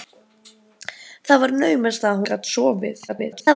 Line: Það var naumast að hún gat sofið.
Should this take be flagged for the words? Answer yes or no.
yes